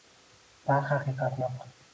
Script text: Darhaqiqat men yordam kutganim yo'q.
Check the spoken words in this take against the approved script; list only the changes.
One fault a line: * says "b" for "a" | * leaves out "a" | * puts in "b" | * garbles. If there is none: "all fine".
* leaves out "men yordam kutganim"